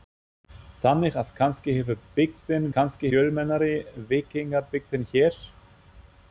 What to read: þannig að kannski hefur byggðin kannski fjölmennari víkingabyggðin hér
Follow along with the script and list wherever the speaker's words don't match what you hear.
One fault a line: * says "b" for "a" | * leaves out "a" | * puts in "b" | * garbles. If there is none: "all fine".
all fine